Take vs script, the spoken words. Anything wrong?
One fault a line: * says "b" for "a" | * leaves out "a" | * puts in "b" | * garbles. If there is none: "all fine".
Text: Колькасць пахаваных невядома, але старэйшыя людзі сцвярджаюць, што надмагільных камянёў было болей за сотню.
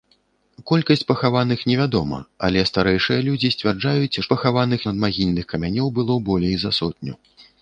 * says "пахаваных" for "што"